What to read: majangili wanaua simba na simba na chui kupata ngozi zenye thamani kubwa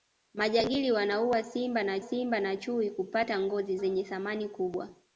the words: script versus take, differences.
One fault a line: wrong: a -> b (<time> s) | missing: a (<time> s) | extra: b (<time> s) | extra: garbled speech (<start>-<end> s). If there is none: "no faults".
no faults